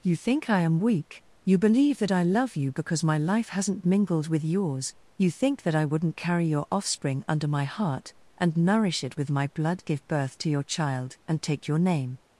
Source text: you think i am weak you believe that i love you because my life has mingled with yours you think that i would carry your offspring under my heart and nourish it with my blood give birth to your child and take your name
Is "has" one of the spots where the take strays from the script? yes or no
yes